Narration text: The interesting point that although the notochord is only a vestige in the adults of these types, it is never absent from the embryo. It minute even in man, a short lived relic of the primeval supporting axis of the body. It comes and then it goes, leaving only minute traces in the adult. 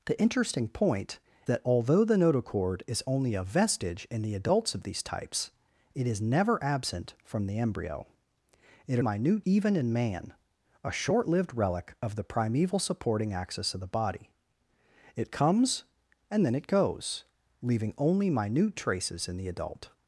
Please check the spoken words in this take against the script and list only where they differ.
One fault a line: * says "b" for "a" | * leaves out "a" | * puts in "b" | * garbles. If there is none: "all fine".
all fine